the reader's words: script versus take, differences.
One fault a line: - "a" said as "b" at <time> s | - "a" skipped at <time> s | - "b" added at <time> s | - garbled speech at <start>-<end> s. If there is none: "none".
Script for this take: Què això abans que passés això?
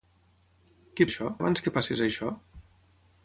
none